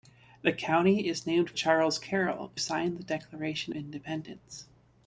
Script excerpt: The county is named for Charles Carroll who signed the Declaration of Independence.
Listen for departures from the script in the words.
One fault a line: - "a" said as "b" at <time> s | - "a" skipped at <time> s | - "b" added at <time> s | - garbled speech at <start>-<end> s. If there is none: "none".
- "for" skipped at 1.5 s
- "who" skipped at 2.5 s
- "of" skipped at 3.7 s